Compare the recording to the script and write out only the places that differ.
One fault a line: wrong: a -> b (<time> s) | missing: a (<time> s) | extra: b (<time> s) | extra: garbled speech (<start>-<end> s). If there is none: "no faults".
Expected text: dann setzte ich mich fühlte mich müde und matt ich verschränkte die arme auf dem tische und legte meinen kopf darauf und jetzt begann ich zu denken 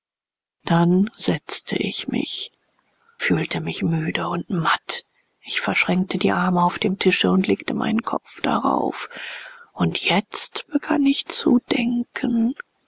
no faults